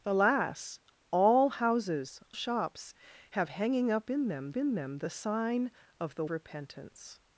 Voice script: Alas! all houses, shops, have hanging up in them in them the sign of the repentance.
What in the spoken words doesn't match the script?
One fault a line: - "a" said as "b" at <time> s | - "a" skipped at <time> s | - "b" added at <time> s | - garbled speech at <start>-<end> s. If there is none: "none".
none